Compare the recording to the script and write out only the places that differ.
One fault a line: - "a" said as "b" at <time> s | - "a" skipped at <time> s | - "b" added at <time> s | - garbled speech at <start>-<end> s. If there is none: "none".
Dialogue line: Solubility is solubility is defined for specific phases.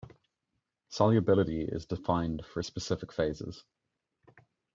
- "solubility is" skipped at 1.9 s